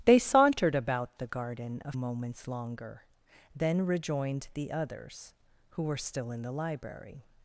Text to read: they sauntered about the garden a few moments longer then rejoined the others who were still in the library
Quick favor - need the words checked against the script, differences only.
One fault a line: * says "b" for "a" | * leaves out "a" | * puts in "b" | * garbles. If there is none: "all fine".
* leaves out "few"